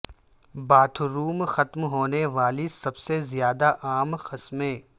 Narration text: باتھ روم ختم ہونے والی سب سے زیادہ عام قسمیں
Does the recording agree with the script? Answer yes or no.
yes